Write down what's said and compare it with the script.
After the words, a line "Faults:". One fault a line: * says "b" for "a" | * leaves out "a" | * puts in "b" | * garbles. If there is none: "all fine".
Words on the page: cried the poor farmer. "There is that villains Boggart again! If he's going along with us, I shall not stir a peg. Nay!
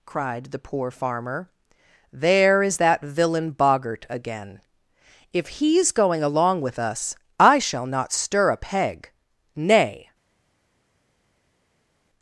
cried the poor farmer. "There is that villain Boggart again! If he's going along with us, I shall not stir a peg. Nay!
Faults:
* says "villain" for "villains"